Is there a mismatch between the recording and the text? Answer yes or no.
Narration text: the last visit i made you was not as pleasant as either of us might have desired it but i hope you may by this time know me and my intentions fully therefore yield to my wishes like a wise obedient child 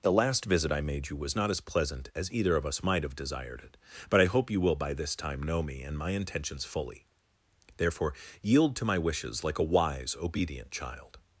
yes